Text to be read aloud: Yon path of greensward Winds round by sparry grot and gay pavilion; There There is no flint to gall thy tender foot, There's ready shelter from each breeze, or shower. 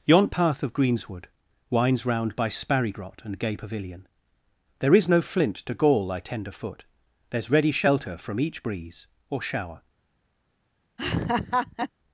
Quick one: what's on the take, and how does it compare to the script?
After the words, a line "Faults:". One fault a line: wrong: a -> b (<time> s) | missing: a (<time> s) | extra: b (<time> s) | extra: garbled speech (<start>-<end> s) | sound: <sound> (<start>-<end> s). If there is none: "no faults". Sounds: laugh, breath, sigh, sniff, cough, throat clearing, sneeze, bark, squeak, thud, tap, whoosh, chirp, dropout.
Yon path of greensward Winds round by sparry grot and gay pavilion; There is no flint to gall thy tender foot, There's ready shelter from each breeze, or shower.
Faults:
missing: There (4.9 s)
sound: laugh (11.0-11.9 s)